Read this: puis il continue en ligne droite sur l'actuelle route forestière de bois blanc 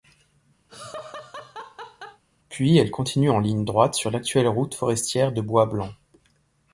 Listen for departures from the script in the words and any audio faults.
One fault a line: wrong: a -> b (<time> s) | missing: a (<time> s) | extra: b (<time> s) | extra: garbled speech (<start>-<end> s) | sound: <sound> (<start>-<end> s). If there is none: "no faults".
sound: laugh (0.7-2.2 s)
wrong: il -> elle (2.8 s)